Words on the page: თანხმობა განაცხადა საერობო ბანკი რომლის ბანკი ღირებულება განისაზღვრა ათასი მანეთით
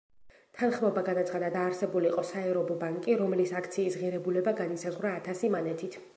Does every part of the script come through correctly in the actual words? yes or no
no